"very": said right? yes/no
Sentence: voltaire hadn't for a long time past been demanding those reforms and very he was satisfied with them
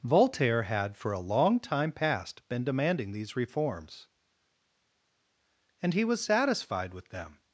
no